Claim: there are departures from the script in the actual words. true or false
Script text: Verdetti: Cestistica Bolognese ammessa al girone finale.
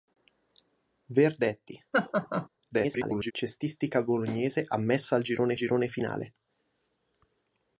true